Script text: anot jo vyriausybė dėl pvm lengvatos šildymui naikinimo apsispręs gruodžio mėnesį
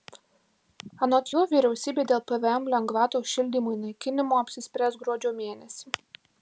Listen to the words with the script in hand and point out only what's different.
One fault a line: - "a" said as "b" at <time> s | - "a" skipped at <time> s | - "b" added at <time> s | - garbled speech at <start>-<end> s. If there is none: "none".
none